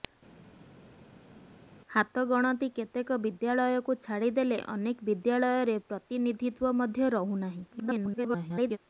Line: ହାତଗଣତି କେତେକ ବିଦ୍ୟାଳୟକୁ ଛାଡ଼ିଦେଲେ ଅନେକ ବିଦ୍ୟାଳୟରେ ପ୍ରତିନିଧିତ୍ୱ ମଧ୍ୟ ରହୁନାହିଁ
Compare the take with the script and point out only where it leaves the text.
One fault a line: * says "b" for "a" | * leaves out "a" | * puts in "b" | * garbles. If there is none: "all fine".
* garbles